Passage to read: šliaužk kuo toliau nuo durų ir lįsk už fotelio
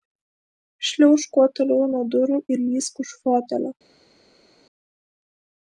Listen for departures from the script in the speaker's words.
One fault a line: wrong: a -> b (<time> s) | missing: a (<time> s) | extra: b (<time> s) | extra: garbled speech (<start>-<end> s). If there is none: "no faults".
no faults